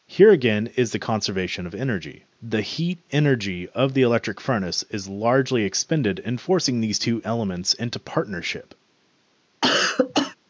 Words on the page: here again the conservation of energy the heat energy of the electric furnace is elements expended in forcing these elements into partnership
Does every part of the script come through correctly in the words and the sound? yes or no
no